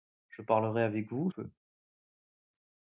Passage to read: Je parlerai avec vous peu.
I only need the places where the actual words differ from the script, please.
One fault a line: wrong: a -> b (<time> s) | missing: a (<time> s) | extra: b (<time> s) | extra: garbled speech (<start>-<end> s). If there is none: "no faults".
no faults